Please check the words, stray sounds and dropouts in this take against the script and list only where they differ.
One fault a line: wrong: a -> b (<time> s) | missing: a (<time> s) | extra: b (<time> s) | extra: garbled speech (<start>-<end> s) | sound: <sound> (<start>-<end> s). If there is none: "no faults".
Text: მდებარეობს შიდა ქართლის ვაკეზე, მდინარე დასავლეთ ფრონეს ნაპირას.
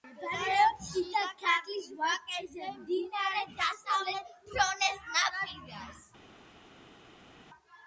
no faults